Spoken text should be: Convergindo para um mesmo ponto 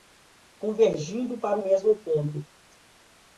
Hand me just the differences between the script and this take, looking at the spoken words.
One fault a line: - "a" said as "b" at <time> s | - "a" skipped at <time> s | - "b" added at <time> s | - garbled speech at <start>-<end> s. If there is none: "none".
none